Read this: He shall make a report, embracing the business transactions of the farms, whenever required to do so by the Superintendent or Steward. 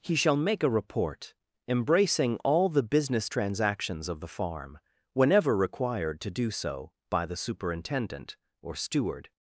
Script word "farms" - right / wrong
wrong